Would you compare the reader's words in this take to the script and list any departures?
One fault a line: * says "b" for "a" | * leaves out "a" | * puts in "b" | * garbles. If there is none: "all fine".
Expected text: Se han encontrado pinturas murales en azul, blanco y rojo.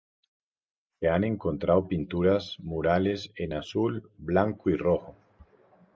all fine